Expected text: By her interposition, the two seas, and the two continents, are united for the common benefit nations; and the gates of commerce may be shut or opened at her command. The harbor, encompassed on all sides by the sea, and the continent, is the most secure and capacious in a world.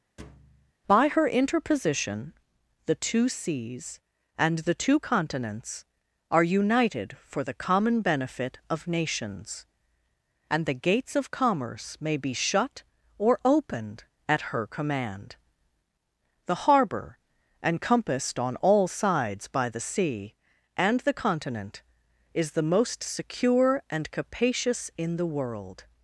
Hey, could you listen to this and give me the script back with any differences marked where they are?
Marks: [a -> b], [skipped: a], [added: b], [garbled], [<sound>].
[thud] By her interposition, the two seas, and the two continents, are united for the common benefit [added: of] nations; and the gates of commerce may be shut or opened at her command. The harbor, encompassed on all sides by the sea, and the continent, is the most secure and capacious in [a -> the] world.